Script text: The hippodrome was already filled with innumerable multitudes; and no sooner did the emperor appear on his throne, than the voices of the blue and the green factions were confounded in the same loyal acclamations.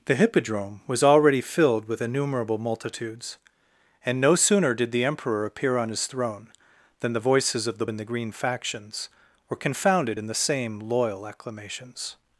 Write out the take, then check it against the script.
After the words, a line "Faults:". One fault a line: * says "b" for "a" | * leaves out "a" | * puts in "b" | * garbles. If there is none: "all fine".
The hippodrome was already filled with innumerable multitudes; and no sooner did the emperor appear on his throne, than the voices of the and the green factions were confounded in the same loyal acclamations.
Faults:
* leaves out "blue"